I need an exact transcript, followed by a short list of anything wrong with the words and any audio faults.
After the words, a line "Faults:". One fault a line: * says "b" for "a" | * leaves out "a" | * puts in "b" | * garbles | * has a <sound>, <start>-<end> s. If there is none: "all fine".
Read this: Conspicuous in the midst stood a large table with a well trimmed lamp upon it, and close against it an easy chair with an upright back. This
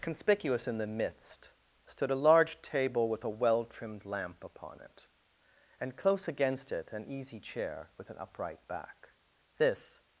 Conspicuous in the midst stood a large table with a well trimmed lamp upon it, and close against it an easy chair with an upright back. This
Faults:
all fine